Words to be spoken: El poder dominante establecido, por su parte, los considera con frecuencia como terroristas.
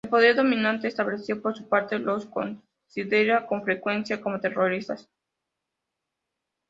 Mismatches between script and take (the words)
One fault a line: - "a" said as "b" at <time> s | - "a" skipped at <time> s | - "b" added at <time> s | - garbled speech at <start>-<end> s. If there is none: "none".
none